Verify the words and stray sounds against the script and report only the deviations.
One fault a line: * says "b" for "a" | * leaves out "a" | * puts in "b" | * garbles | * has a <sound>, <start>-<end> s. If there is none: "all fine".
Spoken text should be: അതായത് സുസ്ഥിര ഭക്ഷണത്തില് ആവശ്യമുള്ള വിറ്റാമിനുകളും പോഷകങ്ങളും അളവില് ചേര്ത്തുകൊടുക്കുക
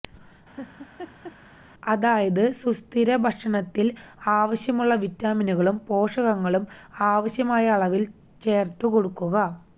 * has a laugh, 0.6-1.4 s
* puts in "ആവശ്യമായ"